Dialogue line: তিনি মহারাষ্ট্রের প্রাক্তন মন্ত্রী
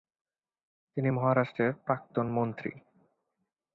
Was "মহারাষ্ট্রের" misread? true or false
false